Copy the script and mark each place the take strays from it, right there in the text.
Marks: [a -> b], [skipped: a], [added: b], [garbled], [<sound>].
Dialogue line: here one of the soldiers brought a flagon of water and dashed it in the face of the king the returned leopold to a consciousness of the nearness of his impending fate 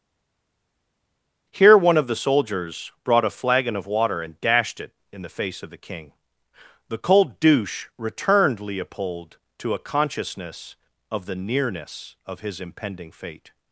here one of the soldiers brought a flagon of water and dashed it in the face of the king the [added: cold douche] returned leopold to a consciousness of the nearness of his impending fate